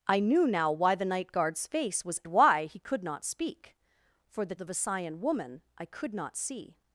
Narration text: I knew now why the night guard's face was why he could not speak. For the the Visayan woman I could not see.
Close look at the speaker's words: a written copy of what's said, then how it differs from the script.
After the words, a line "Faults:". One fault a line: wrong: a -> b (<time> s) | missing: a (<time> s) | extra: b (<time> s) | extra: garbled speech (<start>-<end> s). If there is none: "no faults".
I knew now why the night guard's face was why he could not speak. For the the Visayan woman I could not see.
Faults:
no faults